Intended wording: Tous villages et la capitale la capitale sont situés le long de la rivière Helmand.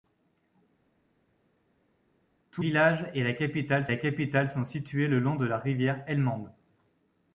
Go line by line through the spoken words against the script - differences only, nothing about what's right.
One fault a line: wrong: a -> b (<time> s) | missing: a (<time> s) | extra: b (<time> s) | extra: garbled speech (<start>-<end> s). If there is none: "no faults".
no faults